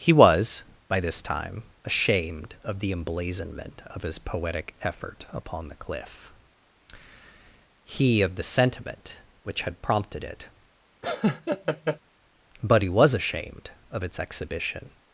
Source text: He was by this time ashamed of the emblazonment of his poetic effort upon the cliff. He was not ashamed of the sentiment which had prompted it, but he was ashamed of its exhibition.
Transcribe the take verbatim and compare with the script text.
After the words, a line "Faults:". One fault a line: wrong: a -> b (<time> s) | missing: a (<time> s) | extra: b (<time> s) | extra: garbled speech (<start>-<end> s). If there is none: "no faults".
He was by this time ashamed of the emblazonment of his poetic effort upon the cliff. He of the sentiment which had prompted it, but he was ashamed of its exhibition.
Faults:
missing: was not ashamed (8.2 s)